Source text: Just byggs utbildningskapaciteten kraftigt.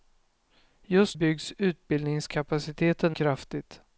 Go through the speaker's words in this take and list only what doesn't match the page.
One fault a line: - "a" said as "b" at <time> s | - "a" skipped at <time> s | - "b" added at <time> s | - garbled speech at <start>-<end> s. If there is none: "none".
none